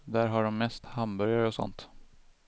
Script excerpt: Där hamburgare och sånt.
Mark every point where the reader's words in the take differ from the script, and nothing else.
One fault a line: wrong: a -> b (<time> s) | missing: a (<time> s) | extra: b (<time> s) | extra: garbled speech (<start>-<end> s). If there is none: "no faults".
extra: har de mest (0.3 s)